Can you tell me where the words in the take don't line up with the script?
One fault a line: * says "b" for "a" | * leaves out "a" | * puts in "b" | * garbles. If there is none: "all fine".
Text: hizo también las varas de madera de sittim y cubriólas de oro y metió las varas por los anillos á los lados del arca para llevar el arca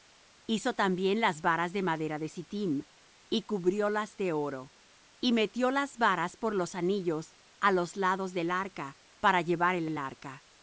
* puts in "el"